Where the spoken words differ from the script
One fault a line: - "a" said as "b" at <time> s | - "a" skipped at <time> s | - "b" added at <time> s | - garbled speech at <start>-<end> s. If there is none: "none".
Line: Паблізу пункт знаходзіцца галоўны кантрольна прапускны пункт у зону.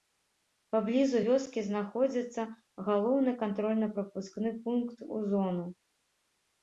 - "пункт" said as "вёскі" at 1.2 s